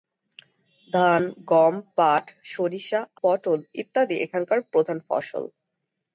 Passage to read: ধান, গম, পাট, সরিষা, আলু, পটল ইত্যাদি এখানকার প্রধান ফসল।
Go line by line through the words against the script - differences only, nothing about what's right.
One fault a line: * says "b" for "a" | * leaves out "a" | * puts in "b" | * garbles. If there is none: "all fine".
* leaves out "আলু"